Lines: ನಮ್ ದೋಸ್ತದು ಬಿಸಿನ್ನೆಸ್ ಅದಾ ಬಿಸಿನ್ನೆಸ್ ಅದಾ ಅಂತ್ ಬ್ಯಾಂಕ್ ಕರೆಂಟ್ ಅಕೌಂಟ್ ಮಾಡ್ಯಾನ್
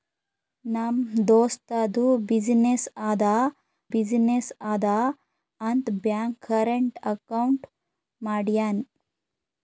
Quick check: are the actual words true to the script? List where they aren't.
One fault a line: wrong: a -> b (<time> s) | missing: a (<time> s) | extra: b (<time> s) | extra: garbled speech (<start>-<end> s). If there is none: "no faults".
no faults